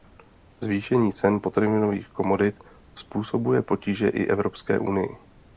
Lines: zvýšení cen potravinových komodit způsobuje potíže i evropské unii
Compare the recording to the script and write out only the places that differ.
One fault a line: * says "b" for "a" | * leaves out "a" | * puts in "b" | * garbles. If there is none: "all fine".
all fine